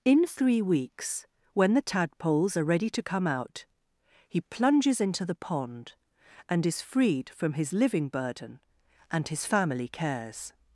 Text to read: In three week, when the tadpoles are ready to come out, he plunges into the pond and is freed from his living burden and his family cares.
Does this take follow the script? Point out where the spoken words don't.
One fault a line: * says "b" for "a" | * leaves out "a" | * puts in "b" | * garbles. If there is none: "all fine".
* says "weeks" for "week"